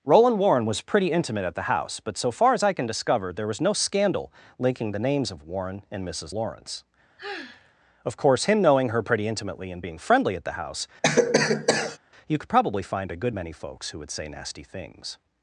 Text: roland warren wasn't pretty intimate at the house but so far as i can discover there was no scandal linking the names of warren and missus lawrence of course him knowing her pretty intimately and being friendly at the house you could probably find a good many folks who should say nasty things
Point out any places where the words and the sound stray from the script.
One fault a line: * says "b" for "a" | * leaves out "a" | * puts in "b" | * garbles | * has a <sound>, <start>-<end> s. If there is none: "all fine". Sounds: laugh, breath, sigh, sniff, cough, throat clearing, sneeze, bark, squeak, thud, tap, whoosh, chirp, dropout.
* says "was" for "wasn't"
* has a sigh, 7.2-7.7 s
* has a cough, 11.0-12.0 s
* says "would" for "should"